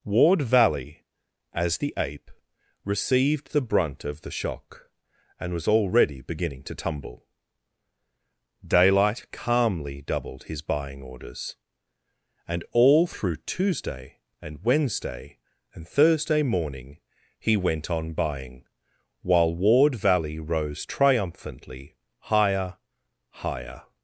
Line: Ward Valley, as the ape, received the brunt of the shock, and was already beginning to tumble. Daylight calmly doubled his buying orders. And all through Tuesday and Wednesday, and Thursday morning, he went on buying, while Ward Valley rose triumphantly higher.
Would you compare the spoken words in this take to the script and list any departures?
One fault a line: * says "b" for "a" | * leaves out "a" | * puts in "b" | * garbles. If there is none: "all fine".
* puts in "higher"